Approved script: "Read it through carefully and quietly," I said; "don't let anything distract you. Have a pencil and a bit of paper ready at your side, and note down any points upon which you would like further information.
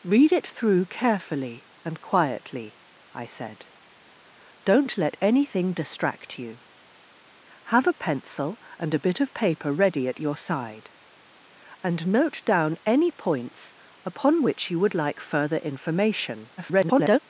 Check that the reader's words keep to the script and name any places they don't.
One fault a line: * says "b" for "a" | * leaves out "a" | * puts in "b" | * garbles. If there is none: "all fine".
* garbles